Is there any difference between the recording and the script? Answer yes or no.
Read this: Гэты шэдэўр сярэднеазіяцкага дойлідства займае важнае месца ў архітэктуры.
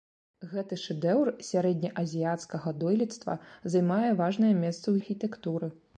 no